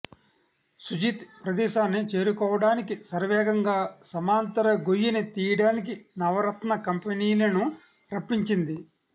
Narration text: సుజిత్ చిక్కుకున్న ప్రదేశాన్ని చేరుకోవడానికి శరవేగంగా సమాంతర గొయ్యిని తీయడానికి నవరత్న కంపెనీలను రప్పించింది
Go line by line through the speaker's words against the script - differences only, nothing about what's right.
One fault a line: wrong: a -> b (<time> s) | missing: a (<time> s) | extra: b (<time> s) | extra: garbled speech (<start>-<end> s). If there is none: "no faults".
missing: చిక్కుకున్న (1.2 s)